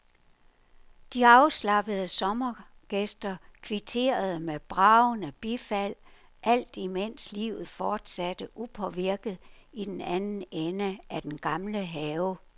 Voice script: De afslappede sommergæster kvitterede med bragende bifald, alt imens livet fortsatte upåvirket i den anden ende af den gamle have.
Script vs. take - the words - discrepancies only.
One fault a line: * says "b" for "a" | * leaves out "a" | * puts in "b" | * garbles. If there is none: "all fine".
all fine